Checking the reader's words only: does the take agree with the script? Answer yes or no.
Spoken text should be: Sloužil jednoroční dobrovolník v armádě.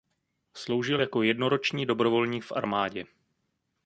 no